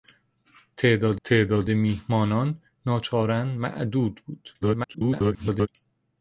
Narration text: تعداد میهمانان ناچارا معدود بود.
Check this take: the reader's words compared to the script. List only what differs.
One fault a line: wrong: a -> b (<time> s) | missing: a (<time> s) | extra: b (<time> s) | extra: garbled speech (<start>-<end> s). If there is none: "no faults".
extra: تعداد (1.2 s)
extra: garbled speech (4.6-5.7 s)